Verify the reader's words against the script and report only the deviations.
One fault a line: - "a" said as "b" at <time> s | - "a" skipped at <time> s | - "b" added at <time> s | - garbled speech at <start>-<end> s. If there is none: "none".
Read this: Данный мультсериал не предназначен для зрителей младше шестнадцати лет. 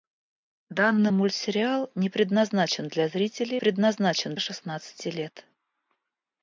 - "младше" said as "предназначен" at 3.6 s